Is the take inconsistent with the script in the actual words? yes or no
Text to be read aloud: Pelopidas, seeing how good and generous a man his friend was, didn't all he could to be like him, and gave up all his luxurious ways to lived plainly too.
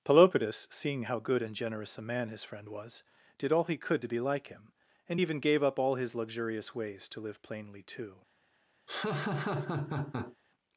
yes